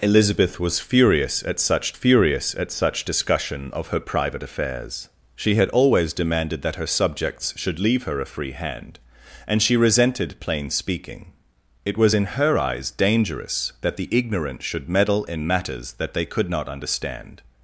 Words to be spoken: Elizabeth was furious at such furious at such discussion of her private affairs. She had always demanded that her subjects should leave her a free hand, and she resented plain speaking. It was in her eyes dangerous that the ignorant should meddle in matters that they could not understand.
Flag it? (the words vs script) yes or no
no